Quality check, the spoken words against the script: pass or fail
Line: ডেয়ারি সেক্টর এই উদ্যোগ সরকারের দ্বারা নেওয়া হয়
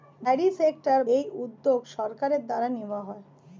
pass